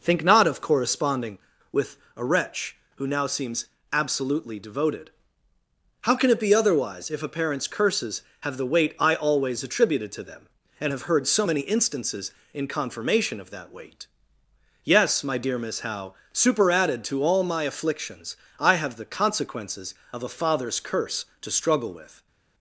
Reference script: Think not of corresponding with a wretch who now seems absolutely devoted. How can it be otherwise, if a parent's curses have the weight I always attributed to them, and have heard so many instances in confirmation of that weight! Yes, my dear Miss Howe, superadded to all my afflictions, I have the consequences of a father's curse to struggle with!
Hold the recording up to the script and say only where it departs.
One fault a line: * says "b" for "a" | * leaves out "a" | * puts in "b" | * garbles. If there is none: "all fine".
all fine